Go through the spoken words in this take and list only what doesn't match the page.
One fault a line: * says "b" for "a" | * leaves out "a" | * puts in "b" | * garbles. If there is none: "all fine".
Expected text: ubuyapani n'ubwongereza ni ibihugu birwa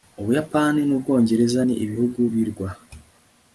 all fine